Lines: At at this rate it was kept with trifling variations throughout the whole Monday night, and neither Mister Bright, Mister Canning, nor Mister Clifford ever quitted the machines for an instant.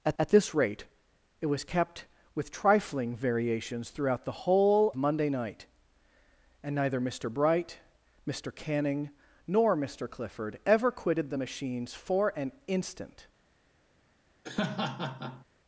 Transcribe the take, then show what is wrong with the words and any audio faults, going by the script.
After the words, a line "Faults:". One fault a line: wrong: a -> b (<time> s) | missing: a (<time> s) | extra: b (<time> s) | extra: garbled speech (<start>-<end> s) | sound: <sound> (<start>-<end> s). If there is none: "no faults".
At at this rate it was kept with trifling variations throughout the whole Monday night, and neither Mister Bright, Mister Canning, nor Mister Clifford ever quitted the machines for an instant.
Faults:
sound: laugh (14.4-15.5 s)